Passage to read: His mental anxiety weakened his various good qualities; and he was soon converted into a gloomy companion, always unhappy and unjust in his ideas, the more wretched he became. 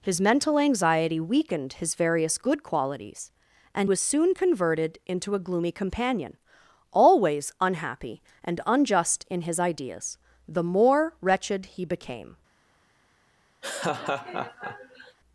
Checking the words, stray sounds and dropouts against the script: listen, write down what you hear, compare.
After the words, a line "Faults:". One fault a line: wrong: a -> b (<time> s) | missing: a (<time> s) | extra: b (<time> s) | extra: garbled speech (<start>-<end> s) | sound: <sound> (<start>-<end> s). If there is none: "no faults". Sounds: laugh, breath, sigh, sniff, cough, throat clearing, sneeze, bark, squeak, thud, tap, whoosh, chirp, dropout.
His mental anxiety weakened his various good qualities; and was soon converted into a gloomy companion, always unhappy and unjust in his ideas, the more wretched he became.
Faults:
missing: he (3.9 s)
sound: laugh (13.6-15.2 s)